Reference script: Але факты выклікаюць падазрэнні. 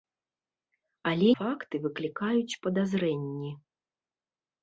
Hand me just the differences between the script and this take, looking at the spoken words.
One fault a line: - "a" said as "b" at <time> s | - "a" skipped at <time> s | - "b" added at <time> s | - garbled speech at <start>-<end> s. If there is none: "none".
none